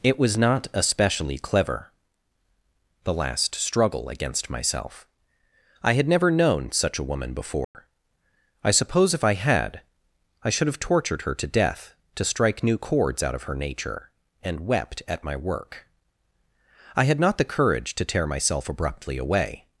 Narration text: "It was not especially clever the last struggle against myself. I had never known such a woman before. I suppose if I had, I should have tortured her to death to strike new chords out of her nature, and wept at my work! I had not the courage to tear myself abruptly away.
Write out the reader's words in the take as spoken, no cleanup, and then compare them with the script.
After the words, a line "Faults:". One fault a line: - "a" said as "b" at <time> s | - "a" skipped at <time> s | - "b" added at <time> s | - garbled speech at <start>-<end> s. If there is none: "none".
"It was not especially clever the last struggle against myself. I had never known such a woman before. I suppose if I had, I should have tortured her to death to strike new chords out of her nature, and wept at my work! I had not the courage to tear myself abruptly away.
Faults:
none